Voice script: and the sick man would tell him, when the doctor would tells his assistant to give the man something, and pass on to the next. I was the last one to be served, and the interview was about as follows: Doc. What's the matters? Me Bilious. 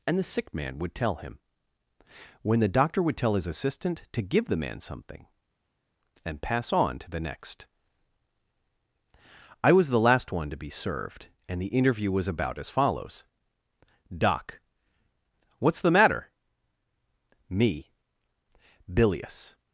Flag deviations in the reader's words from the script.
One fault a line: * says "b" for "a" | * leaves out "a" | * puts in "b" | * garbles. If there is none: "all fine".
* says "tell" for "tells"
* says "matter" for "matters"